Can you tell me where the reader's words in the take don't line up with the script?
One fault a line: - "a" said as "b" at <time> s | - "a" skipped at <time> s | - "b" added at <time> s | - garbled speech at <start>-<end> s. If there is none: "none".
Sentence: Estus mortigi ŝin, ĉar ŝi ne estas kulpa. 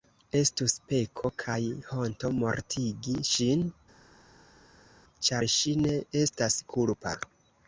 - "peko kaj honto" added at 0.9 s